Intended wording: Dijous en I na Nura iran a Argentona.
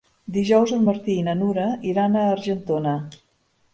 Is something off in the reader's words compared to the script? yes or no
yes